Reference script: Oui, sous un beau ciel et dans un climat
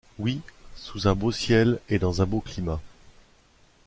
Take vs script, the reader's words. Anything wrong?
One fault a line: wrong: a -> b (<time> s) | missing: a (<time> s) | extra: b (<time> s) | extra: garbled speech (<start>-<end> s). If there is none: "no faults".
extra: beau (2.2 s)